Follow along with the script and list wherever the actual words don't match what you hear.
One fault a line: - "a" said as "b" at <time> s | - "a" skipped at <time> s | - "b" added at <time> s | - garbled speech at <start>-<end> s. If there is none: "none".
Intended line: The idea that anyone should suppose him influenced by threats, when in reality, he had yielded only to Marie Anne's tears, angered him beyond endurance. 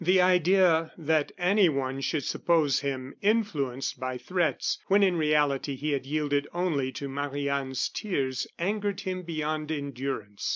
none